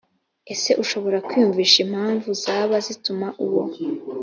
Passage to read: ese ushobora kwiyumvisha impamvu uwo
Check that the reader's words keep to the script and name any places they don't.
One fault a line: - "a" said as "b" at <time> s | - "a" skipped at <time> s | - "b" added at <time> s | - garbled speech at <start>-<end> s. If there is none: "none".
- "zaba zituma" added at 2.4 s